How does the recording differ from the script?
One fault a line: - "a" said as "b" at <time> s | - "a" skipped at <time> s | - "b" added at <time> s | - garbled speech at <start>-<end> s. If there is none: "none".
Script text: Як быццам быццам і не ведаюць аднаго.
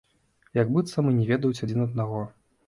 - "быццам" skipped at 1.1 s
- "адзін" added at 1.7 s